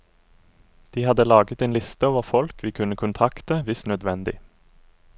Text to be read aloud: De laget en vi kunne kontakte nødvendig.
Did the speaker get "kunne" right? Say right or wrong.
right